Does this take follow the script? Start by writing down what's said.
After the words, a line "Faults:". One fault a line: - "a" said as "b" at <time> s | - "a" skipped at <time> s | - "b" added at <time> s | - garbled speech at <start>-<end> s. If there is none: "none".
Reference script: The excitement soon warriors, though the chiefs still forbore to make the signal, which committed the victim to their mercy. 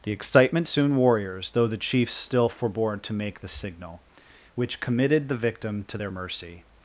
The excitement soon warriors, though the chiefs still forbore to make the signal, which committed the victim to their mercy.
Faults:
none